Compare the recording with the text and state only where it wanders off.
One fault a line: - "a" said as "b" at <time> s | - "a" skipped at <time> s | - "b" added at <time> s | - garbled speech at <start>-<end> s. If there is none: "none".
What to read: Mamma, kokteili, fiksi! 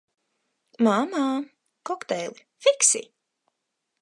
none